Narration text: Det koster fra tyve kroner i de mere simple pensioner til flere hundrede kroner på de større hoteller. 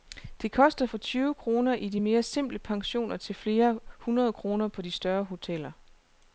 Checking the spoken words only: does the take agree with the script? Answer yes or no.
yes